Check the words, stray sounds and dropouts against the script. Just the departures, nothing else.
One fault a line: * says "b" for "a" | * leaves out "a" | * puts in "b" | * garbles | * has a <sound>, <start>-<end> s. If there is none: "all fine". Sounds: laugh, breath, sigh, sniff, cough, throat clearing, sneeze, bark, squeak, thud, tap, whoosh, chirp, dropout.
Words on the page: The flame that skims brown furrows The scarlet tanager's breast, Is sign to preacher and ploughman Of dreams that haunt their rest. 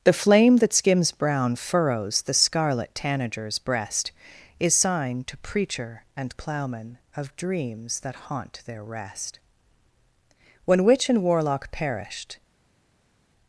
* puts in "When witch and warlock perished"